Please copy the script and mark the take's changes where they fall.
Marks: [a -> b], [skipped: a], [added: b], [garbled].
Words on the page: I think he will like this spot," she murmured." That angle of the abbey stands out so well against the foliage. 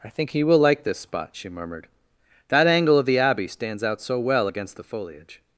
I think he will like this spot," she murmured." That angle of the abbey stands out so well against the foliage.